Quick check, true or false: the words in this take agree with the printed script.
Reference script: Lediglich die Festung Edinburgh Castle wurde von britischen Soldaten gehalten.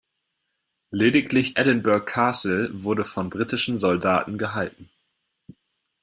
false